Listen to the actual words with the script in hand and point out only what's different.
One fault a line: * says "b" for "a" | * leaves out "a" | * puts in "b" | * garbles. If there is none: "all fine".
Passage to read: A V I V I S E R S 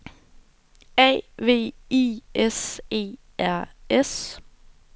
* leaves out "V I"